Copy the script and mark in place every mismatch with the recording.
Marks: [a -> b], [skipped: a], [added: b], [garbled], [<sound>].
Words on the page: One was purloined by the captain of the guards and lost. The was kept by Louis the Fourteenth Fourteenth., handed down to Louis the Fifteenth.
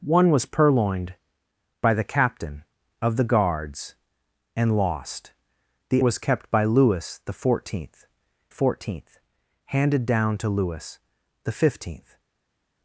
One was purloined by the captain of the guards and lost. The was kept by Louis the Fourteenth Fourteenth., handed down to Louis the Fifteenth.